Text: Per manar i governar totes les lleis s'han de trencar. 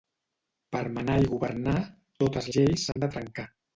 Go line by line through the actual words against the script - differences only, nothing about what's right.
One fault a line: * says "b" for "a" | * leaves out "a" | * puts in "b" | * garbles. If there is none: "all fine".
* leaves out "les"